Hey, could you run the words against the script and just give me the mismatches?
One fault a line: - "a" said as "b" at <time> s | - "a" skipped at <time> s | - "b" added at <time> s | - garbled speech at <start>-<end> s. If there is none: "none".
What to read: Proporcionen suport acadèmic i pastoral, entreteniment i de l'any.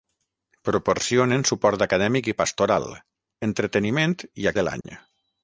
none